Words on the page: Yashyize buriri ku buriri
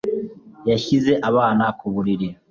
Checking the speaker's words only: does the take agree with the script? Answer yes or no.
no